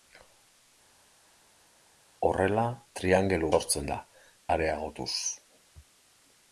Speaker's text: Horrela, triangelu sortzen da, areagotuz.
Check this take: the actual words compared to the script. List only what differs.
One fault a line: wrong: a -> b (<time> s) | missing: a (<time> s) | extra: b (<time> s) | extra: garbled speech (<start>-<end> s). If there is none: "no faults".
no faults